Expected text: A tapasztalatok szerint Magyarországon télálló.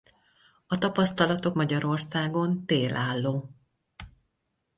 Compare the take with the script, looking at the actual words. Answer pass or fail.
fail